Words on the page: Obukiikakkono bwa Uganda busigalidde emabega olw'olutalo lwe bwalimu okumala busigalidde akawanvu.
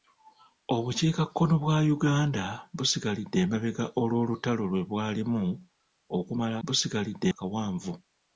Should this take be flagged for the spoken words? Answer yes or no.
no